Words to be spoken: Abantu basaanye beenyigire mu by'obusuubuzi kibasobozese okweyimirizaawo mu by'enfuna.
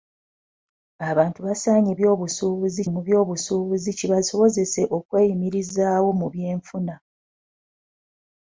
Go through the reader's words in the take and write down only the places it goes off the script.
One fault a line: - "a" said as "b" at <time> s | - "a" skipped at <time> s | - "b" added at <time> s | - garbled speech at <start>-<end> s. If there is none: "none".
- "beenyigire" said as "by'obusuubuzi" at 2.0 s